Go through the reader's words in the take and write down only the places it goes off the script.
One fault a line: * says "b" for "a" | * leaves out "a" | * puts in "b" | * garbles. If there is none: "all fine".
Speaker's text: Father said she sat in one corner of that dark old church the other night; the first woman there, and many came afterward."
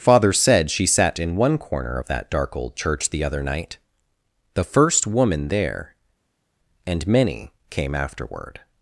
all fine